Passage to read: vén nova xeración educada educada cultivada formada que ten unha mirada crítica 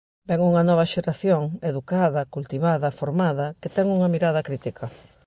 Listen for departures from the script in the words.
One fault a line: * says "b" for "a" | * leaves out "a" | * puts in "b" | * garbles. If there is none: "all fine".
* puts in "unha"
* leaves out "educada"